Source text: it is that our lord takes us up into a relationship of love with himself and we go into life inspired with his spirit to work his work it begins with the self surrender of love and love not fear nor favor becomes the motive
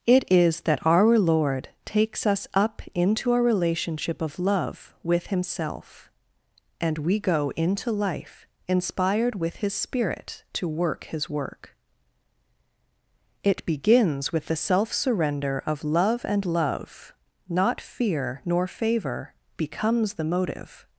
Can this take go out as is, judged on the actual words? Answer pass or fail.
pass